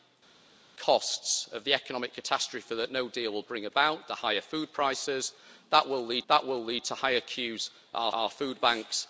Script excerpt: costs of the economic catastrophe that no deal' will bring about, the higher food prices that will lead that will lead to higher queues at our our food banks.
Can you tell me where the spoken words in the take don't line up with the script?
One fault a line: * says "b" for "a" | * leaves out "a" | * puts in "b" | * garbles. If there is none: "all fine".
all fine